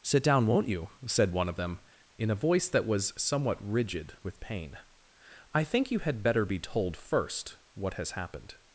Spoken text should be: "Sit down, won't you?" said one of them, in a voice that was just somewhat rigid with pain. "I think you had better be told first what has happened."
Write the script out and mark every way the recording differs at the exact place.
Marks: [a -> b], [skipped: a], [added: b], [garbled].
"Sit down, won't you?" said one of them, in a voice that was [skipped: just] somewhat rigid with pain. "I think you had better be told first what has happened."